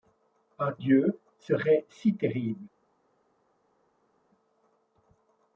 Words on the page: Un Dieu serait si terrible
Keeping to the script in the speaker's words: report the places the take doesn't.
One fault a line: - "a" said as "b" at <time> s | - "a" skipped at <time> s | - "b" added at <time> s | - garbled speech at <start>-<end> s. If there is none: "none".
none